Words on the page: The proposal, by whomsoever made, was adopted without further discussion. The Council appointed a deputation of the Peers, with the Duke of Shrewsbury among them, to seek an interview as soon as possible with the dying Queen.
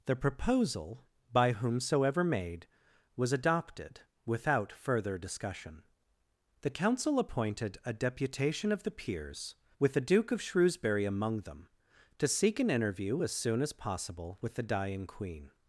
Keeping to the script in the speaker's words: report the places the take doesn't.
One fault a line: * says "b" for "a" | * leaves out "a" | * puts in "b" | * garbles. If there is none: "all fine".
all fine